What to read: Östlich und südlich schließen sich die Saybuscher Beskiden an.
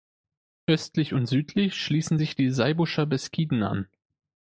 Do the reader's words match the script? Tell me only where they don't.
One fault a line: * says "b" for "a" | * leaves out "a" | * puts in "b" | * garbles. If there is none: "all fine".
all fine